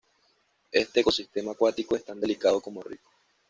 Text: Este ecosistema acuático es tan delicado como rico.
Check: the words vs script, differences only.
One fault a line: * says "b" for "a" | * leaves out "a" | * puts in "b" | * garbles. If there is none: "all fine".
all fine